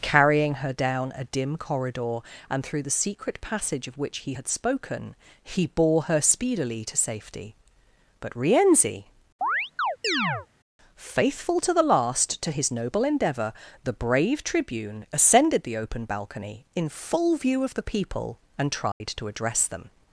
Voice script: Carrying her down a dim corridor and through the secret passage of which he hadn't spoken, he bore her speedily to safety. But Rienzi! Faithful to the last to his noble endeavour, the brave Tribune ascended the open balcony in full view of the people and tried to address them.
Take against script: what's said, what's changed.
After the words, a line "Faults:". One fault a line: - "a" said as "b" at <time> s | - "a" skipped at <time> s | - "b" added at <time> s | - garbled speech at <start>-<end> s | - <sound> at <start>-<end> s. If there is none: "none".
Carrying her down a dim corridor and through the secret passage of which he had spoken, he bore her speedily to safety. But Rienzi! Faithful to the last to his noble endeavour, the brave Tribune ascended the open balcony in full view of the people and tried to address them.
Faults:
- "hadn't" said as "had" at 4.3 s
- chirp at 9.4-10.5 s
- dropout at 18.9-19.0 s